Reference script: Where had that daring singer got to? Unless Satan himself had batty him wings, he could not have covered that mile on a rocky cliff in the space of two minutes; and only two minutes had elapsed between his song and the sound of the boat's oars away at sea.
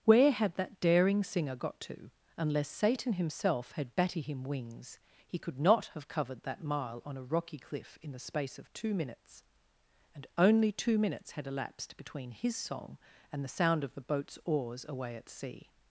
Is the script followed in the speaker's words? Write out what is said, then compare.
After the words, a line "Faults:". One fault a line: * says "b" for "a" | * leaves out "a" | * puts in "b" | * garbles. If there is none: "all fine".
Where had that daring singer got to? Unless Satan himself had batty him wings, he could not have covered that mile on a rocky cliff in the space of two minutes; and only two minutes had elapsed between his song and the sound of the boat's oars away at sea.
Faults:
all fine